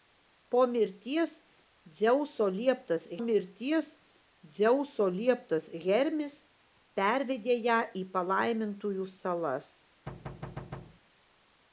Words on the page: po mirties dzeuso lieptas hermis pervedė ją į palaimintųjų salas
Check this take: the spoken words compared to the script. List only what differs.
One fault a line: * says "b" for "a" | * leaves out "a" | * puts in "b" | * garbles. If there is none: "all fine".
* puts in "mirties dzeuso lieptas"